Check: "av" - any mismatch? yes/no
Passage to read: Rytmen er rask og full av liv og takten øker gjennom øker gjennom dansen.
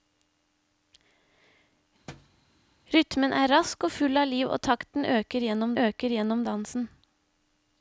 no